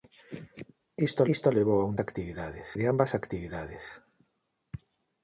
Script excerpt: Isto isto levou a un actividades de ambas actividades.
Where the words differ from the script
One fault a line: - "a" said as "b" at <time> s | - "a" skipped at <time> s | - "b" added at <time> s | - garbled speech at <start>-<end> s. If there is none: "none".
none